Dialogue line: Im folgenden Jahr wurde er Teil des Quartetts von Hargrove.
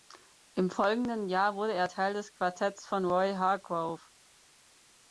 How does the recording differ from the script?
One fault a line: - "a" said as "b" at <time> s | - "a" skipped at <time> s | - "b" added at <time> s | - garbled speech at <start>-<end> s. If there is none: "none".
- "Roy" added at 3.0 s